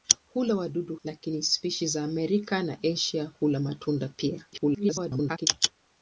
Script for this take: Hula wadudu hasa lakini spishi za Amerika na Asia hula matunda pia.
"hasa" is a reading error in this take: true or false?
true